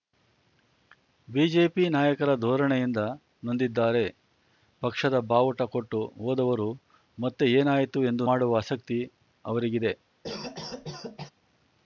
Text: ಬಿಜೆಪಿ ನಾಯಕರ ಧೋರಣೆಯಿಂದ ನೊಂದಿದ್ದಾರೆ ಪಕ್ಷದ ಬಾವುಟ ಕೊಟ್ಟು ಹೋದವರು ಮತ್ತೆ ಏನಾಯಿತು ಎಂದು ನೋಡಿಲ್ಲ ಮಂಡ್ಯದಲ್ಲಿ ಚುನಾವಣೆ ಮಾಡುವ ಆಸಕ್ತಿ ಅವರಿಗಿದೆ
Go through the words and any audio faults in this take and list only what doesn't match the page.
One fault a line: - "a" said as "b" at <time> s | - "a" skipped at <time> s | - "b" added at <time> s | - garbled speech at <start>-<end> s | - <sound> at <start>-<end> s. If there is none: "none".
- "ನೋಡಿಲ್ಲ ಮಂಡ್ಯದಲ್ಲಿ ಚುನಾವಣೆ" skipped at 8.3 s
- cough at 10.2-11.3 s